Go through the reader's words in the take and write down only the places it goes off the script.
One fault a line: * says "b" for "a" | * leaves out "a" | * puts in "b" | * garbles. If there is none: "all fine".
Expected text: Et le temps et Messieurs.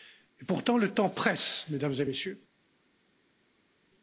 * puts in "pourtant"
* puts in "presse Mesdames"